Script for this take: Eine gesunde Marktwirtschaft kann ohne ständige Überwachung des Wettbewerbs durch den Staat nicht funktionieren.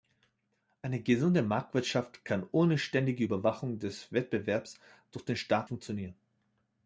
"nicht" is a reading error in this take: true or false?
true